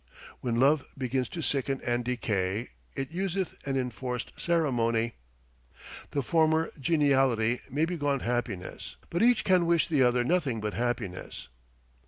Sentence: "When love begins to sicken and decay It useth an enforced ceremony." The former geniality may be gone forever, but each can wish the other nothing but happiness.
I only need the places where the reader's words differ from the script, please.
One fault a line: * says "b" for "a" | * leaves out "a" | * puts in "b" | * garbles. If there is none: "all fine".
* says "happiness" for "forever"